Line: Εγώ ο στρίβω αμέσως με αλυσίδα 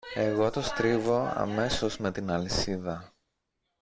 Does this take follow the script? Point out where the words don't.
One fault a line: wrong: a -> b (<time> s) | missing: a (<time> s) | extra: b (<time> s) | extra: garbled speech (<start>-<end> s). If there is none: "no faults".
wrong: ο -> το (0.5 s)
extra: την (2.1 s)